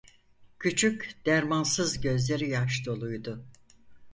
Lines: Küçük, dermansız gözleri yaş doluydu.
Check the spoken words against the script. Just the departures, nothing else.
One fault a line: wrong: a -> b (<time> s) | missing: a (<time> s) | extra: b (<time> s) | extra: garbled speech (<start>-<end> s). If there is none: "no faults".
no faults